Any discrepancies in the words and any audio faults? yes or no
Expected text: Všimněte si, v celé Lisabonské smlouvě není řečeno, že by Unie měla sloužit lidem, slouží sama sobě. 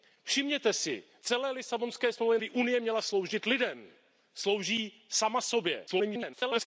yes